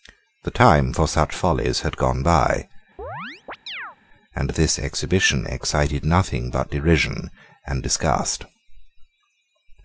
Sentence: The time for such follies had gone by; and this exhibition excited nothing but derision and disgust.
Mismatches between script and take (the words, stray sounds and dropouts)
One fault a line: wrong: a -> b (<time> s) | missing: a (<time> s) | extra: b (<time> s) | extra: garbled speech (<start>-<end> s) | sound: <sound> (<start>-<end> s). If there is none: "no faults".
sound: chirp (3.0-4.0 s)